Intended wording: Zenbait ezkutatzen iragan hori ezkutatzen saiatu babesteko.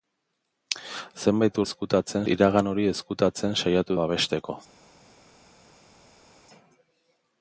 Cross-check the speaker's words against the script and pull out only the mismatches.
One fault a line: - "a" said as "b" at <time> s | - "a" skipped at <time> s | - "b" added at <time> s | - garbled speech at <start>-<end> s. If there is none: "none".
none